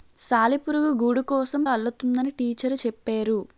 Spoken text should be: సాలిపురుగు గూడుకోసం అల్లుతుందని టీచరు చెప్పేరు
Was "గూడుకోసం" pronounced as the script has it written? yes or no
yes